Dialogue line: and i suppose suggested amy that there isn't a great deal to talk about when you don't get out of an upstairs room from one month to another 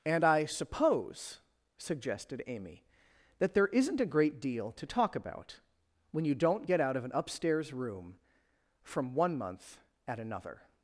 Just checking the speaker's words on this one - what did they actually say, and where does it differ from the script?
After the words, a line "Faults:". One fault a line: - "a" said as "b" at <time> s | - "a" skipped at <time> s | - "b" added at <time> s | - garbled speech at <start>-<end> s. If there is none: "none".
and i suppose suggested amy that there isn't a great deal to talk about when you don't get out of an upstairs room from one month at another
Faults:
- "to" said as "at" at 10.1 s